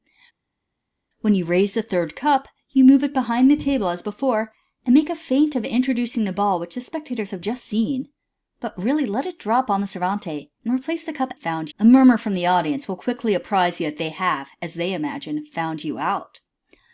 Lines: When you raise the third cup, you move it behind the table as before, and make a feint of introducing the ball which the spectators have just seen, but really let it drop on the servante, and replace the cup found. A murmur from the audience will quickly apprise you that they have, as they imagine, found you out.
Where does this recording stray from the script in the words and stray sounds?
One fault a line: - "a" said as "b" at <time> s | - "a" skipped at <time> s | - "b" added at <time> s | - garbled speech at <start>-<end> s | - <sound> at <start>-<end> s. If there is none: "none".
none